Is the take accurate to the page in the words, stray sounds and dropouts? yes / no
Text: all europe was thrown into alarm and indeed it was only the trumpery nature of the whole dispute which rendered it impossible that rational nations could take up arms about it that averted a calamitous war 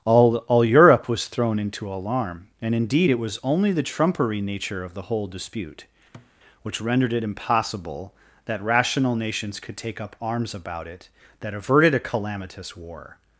no